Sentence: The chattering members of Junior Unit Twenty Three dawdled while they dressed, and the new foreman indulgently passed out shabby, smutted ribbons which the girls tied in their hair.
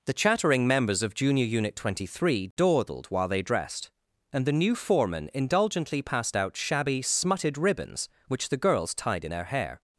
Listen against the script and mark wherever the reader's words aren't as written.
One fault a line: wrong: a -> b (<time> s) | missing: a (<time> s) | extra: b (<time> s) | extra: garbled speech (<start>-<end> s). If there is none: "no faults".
no faults